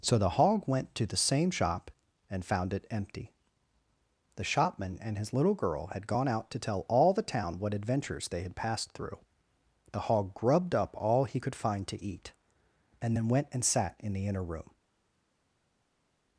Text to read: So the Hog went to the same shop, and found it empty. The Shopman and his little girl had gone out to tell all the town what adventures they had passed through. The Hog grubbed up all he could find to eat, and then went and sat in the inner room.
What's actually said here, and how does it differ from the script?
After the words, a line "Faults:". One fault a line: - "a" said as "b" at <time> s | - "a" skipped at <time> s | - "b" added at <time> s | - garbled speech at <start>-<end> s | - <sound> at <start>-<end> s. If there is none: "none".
So the Hog went to the same shop, and found it empty. The Shopman and his little girl had gone out to tell all the town what adventures they had passed through. The Hog grubbed up all he could find to eat, and then went and sat in the inner room.
Faults:
none